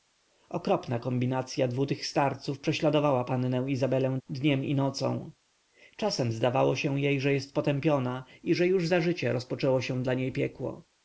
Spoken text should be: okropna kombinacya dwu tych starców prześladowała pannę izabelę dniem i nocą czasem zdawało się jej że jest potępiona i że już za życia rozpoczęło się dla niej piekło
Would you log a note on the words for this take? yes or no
no